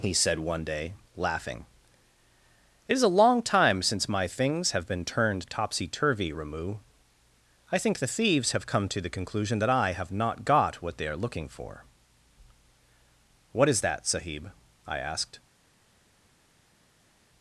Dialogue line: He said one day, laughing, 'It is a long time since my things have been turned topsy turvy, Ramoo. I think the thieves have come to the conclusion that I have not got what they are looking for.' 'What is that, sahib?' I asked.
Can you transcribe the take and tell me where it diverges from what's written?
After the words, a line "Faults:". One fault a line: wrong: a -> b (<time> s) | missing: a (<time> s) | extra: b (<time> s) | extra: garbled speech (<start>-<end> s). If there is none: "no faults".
He said one day, laughing, 'It is a long time since my things have been turned topsy turvy, Ramoo. I think the thieves have come to the conclusion that I have not got what they are looking for.' 'What is that, sahib?' I asked.
Faults:
no faults